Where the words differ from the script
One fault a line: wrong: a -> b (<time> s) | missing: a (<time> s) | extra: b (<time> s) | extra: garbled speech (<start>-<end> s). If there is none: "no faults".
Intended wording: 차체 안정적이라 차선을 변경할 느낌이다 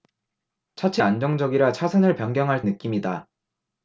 no faults